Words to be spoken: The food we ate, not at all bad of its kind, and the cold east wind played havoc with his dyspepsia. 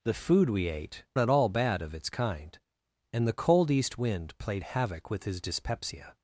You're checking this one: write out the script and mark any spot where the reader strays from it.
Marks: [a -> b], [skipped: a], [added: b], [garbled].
The food we ate, [skipped: not] at all bad of its kind, and the cold east wind played havoc with his dyspepsia.